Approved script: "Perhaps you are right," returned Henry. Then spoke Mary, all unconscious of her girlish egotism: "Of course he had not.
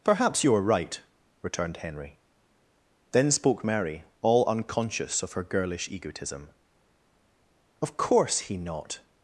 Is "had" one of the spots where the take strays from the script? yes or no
yes